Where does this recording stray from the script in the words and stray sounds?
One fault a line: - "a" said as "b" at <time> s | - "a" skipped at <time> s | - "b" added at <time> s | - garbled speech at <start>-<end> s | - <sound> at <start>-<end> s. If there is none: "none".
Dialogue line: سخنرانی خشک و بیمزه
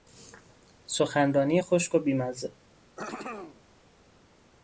- throat clearing at 3.0-3.6 s